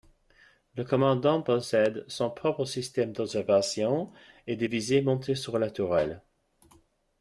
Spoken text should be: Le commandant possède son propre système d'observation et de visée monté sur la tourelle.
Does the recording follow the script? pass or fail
pass